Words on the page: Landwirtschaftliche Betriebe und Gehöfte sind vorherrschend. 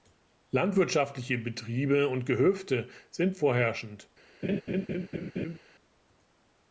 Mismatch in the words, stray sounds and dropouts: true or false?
true